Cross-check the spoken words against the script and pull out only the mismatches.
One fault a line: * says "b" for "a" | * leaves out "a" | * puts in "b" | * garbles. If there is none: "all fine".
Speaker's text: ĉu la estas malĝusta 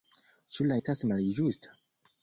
all fine